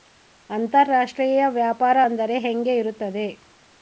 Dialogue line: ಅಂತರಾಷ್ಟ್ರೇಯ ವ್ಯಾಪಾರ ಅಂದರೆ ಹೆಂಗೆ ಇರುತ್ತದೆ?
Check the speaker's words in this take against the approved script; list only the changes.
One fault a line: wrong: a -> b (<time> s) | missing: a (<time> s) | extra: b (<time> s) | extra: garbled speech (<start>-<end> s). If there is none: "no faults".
no faults